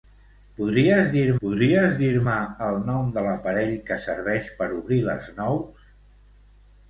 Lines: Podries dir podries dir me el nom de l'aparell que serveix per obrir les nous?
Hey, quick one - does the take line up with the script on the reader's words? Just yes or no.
yes